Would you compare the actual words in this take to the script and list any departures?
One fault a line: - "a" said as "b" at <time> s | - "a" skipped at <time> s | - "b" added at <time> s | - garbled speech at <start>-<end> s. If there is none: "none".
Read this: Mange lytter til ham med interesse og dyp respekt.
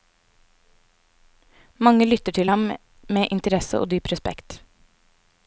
none